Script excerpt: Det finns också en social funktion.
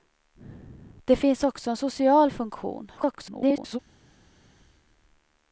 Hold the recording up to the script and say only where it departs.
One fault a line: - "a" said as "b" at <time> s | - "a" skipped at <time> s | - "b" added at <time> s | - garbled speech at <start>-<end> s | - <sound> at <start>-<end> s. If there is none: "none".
- garbled speech at 3.0-3.8 s